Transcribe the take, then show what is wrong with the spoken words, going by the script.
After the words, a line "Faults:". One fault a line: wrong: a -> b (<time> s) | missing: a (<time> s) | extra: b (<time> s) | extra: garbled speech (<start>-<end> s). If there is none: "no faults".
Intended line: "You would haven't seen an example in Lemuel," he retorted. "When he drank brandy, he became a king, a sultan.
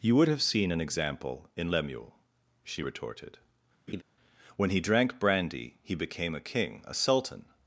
"You would have seen an example in Lemuel," she retorted. "When he drank brandy, he became a king, a sultan.
Faults:
wrong: haven't -> have (0.3 s)
wrong: he -> she (2.6 s)